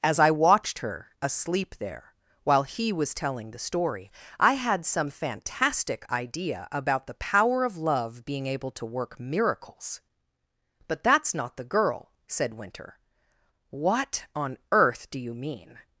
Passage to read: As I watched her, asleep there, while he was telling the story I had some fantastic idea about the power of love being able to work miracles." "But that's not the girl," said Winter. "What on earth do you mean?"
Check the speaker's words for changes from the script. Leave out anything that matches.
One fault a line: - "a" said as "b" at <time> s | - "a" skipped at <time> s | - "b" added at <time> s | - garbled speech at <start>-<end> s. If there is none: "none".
none